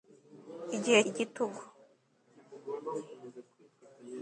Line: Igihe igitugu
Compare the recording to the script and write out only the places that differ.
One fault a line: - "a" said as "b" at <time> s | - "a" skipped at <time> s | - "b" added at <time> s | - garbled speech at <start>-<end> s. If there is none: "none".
none